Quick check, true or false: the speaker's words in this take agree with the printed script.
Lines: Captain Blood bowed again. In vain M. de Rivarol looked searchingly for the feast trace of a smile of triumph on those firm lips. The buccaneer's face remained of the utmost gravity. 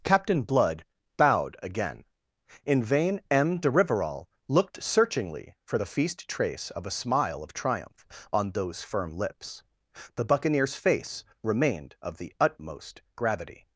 true